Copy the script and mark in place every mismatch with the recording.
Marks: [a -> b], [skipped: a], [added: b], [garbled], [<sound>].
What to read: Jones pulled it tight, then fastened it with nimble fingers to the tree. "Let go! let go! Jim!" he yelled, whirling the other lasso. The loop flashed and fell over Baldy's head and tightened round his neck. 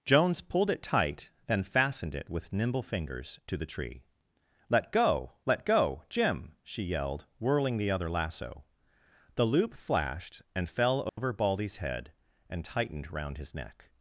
Jones pulled it tight, then fastened it with nimble fingers to the tree. "Let go! let go! Jim!" [he -> she] yelled, whirling the other lasso. The loop flashed and fell over [dropout] Baldy's head and tightened round his neck.